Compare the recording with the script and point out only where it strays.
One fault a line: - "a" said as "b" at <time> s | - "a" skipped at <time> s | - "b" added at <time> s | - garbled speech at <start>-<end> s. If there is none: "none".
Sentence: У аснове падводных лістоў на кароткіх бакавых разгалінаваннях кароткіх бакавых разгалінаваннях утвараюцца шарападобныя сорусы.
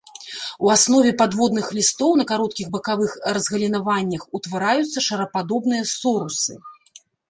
- "кароткіх бакавых разгалінаваннях" skipped at 4.2 s